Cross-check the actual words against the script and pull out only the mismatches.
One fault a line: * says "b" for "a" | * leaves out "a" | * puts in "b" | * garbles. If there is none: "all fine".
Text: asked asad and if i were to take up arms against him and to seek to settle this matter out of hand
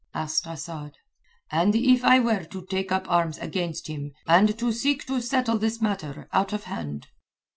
all fine